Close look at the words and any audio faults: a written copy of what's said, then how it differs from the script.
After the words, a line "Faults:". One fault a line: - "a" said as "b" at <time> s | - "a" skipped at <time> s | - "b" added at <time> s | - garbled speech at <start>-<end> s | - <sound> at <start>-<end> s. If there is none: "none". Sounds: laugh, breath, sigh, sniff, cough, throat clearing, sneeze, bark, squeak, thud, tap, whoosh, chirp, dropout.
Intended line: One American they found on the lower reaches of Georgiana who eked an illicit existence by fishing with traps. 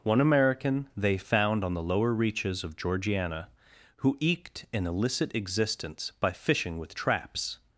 One American they found on the lower reaches of Georgiana who eked an illicit existence by fishing with traps.
Faults:
none